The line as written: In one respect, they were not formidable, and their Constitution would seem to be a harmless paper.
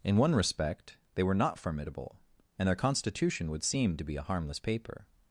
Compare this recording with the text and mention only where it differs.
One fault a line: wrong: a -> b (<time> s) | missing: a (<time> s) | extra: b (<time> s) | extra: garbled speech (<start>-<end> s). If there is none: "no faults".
no faults